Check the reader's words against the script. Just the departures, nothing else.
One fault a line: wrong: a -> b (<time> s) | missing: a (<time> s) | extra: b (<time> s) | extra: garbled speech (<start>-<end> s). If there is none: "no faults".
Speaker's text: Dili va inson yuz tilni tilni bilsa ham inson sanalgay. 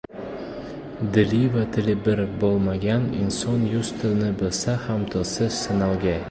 extra: tili bir bo‘lmagan (1.7 s)
missing: tilni (4.3 s)
wrong: inson -> tilsiz (5.2 s)